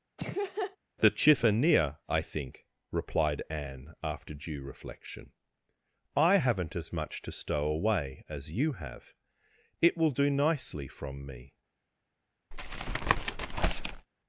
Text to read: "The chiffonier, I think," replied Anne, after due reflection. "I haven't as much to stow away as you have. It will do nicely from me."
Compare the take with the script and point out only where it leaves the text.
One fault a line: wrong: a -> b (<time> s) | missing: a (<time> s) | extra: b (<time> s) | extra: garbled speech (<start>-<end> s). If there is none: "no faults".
no faults